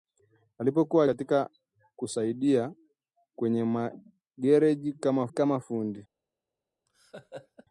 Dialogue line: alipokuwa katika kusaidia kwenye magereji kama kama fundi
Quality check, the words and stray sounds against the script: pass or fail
fail